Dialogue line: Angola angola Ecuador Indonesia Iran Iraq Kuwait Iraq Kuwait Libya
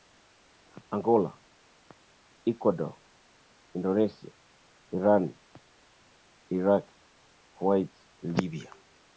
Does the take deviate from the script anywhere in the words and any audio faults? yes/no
yes